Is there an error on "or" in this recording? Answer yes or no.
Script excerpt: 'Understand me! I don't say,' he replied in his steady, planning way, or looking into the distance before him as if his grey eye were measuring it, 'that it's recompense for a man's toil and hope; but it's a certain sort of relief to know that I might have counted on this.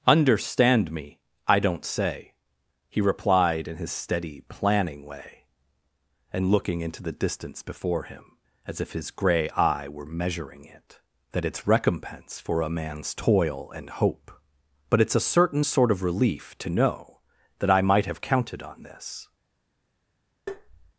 yes